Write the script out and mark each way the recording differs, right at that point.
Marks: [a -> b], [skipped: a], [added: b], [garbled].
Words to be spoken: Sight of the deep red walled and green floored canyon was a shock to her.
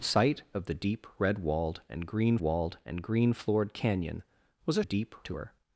Sight of the deep red walled and green [added: walled and green] floored canyon was a [shock -> deep] to her.